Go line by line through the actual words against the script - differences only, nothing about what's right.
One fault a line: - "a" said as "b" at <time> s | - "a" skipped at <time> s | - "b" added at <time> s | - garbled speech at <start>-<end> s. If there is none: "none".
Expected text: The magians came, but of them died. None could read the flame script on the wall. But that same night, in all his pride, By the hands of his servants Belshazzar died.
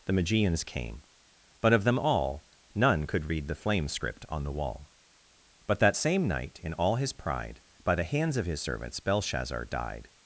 - "died" said as "all" at 2.0 s